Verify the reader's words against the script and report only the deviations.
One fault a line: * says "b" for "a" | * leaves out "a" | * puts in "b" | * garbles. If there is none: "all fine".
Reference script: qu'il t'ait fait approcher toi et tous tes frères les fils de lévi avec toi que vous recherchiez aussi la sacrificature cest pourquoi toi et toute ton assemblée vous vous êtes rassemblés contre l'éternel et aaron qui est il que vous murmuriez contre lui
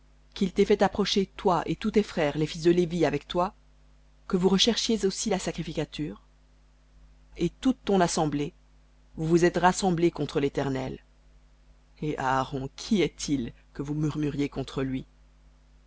* leaves out "cest pourquoi toi"